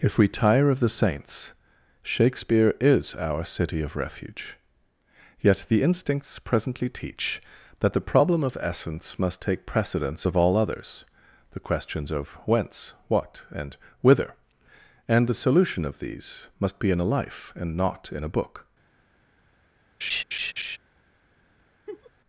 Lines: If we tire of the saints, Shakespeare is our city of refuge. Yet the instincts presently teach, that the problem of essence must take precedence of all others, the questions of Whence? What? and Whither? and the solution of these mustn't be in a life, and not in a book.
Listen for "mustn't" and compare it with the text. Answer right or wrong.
wrong